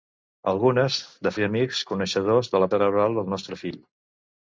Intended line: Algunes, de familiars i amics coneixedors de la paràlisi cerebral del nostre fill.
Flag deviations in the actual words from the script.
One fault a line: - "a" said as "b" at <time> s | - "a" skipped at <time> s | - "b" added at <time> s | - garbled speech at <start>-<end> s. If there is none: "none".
- "familiars" skipped at 1.3 s
- "paràlisi" skipped at 2.7 s